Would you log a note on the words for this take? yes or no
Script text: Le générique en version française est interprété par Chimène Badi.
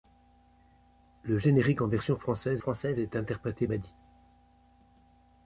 yes